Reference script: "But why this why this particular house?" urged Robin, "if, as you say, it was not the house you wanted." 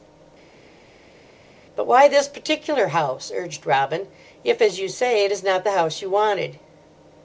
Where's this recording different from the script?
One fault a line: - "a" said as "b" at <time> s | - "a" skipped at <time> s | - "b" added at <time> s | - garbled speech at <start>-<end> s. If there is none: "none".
- "why this" skipped at 2.3 s
- "was" said as "is" at 5.3 s